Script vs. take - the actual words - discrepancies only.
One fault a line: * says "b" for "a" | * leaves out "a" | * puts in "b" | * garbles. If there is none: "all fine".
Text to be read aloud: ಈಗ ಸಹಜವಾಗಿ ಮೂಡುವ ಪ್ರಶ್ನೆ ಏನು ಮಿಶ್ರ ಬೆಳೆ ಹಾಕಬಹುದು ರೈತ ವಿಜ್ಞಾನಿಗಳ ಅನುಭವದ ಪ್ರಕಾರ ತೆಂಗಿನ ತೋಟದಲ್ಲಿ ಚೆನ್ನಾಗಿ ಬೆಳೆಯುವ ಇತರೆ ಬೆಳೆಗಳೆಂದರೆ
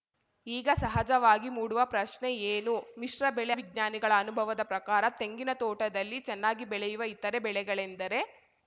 * leaves out "ಹಾಕಬಹುದು ರೈತ"